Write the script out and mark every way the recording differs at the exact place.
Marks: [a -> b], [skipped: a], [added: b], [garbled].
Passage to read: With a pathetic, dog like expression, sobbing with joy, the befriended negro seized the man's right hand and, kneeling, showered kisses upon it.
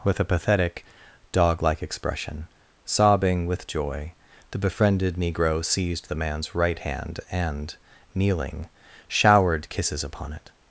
With a pathetic, dog like expression, sobbing with joy, the befriended negro seized the man's right hand and, kneeling, showered kisses upon it.